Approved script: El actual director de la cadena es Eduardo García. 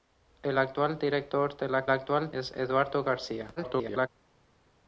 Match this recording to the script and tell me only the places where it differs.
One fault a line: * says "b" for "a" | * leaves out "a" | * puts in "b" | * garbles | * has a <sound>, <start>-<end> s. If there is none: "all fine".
* says "actual" for "cadena"
* garbles